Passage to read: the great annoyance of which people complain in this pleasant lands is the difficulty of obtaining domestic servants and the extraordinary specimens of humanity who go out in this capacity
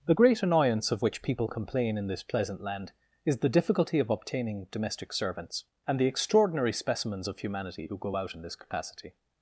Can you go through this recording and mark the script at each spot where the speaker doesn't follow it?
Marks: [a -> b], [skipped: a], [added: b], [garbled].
the great annoyance of which people complain in this pleasant [lands -> land] is the difficulty of obtaining domestic servants and the extraordinary specimens of humanity who go out in this capacity